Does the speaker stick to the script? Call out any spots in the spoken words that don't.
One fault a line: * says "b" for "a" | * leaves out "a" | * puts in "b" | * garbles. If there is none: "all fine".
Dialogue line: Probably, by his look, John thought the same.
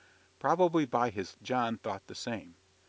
* leaves out "look"